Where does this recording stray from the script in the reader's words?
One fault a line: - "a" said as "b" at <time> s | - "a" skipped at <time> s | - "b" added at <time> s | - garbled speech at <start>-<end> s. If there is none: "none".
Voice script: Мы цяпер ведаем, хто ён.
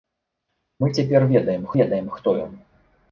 - "ведаем" added at 1.8 s